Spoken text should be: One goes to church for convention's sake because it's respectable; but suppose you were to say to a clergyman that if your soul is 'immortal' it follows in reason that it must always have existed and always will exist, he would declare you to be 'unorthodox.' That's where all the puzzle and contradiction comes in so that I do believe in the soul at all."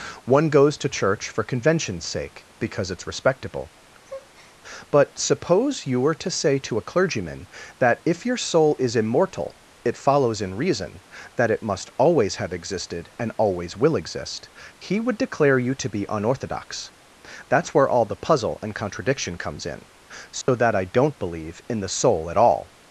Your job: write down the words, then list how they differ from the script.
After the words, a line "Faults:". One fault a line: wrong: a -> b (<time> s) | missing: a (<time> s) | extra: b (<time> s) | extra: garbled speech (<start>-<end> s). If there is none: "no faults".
One goes to church for convention's sake because it's respectable; but suppose you were to say to a clergyman that if your soul is 'immortal' it follows in reason that it must always have existed and always will exist, he would declare you to be 'unorthodox.' That's where all the puzzle and contradiction comes in so that I don't believe in the soul at all."
Faults:
wrong: do -> don't (20.8 s)